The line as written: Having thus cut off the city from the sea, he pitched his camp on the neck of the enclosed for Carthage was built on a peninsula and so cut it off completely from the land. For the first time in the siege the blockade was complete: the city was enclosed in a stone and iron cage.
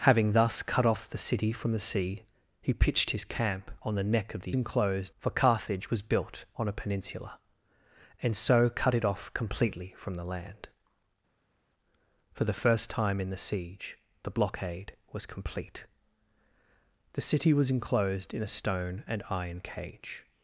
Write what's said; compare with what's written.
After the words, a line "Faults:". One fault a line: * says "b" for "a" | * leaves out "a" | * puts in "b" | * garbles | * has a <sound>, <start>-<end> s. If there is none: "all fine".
Having thus cut off the city from the sea, he pitched his camp on the neck of the enclosed for Carthage was built on a peninsula and so cut it off completely from the land. For the first time in the siege the blockade was complete: the city was enclosed in a stone and iron cage.
Faults:
all fine